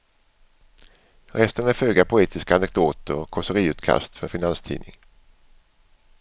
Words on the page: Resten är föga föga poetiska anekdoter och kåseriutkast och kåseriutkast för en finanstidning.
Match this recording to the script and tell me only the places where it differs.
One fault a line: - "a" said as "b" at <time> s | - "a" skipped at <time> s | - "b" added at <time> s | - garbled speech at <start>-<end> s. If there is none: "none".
- "föga" skipped at 2.0 s
- "och kåseriutkast" skipped at 4.2 s